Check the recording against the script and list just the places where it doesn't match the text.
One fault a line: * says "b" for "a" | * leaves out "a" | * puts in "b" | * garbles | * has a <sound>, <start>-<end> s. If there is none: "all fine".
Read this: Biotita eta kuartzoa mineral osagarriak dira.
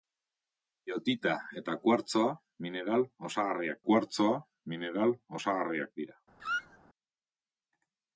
* puts in "kuartzoa mineral osagarriak"
* has a squeak, 6.4-6.8 s